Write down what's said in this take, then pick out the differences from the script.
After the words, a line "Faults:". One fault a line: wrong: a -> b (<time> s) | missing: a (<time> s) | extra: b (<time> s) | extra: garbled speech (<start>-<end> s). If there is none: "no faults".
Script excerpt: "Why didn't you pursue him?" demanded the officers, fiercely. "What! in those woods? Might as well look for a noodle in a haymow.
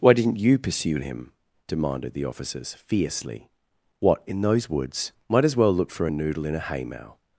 "Why didn't you pursue him?" demanded the officers, fiercely. "What! in those woods? Might as well look for a noodle in a haymow.
Faults:
no faults